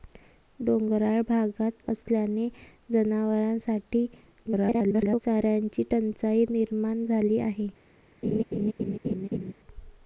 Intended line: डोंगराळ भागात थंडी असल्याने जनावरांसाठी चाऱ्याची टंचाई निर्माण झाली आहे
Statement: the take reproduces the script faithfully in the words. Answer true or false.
false